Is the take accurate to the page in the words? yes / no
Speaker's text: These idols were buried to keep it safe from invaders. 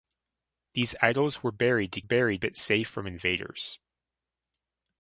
no